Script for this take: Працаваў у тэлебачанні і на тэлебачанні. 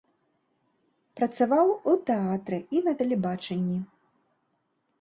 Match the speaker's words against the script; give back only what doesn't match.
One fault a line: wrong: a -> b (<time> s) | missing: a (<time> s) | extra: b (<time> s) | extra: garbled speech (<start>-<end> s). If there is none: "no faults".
wrong: тэлебачанні -> тэатры (2.1 s)